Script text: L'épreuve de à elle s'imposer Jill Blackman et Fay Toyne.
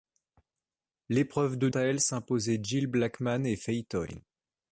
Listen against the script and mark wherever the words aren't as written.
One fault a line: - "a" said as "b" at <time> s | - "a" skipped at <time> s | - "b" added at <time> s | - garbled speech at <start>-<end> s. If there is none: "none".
none